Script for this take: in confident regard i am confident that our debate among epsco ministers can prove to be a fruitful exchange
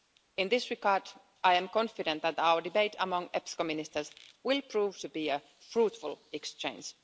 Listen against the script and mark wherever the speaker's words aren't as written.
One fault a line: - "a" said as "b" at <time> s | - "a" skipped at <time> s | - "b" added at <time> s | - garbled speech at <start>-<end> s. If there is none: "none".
- "confident" said as "this" at 0.5 s
- "can" said as "will" at 4.4 s